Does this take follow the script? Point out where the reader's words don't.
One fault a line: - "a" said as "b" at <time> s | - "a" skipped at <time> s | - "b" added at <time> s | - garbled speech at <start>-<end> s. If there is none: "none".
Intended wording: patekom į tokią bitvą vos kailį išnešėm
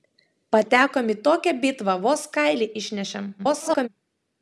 - garbled speech at 3.4-3.9 s